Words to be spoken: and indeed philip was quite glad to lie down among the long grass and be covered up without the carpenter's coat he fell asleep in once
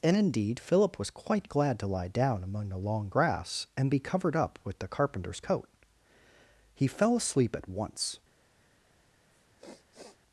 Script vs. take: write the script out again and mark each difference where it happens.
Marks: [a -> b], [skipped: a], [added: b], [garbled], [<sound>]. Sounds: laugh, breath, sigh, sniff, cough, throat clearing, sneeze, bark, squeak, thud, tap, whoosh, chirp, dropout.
and indeed philip was quite glad to lie down among the long grass and be covered up [without -> with] the carpenter's coat he fell asleep [in -> at] once [sniff]